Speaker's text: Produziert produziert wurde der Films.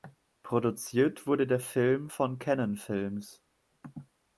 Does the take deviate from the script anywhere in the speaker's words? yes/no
yes